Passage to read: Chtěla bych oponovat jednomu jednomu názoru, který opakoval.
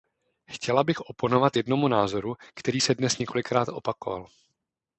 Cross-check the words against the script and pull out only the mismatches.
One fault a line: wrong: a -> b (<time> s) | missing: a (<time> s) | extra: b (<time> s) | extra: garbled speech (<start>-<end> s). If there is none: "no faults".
missing: jednomu (1.9 s)
extra: se dnes několikrát (2.8 s)